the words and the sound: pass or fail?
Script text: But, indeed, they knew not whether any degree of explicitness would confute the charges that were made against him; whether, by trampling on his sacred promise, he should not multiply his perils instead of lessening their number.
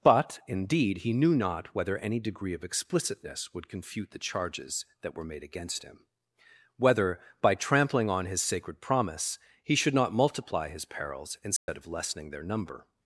fail